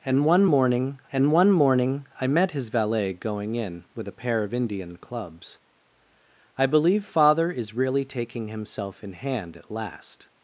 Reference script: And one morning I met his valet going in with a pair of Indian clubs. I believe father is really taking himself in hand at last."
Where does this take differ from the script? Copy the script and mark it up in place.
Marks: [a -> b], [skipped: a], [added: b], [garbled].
And one morning [added: and one morning] I met his valet going in with a pair of Indian clubs. I believe father is really taking himself in hand at last."